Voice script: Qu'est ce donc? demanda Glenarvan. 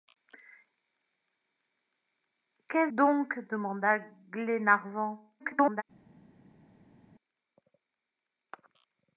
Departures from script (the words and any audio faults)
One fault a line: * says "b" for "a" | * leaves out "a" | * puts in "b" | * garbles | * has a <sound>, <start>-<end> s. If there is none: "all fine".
* leaves out "ce"
* garbles